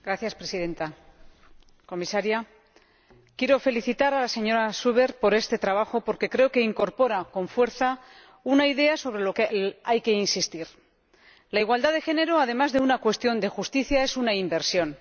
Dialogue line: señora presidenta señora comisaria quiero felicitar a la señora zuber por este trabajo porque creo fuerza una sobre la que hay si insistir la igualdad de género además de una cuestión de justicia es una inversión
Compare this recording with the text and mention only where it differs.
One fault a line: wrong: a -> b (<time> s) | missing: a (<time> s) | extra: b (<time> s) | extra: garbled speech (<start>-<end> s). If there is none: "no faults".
extra: que incorpora con (6.5 s)
extra: idea (8.7 s)
wrong: si -> que (10.0 s)